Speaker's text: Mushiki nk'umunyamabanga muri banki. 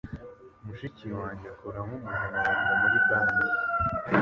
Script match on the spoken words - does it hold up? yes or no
no